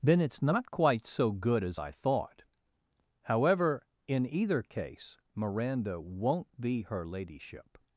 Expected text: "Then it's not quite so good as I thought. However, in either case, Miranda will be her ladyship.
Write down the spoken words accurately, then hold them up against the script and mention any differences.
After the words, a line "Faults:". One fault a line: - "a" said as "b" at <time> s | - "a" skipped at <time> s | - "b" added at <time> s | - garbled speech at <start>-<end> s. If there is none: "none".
"Then it's not quite so good as I thought. However, in either case, Miranda won't be her ladyship.
Faults:
- "will" said as "won't" at 6.0 s